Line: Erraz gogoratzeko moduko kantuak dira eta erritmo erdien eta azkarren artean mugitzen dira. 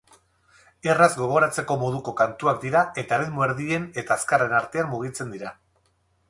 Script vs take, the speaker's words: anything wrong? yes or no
no